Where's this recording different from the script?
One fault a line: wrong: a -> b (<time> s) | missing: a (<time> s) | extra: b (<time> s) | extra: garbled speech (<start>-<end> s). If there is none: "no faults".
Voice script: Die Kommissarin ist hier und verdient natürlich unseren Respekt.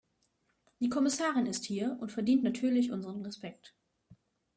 no faults